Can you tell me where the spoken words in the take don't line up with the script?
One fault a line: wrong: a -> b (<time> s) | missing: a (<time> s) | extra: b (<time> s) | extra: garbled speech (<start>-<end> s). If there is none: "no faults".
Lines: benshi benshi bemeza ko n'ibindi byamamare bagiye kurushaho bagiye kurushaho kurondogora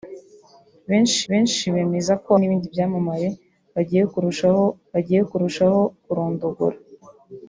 no faults